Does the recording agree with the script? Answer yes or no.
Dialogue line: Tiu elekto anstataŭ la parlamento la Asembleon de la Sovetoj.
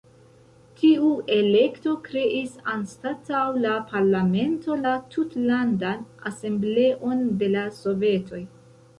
no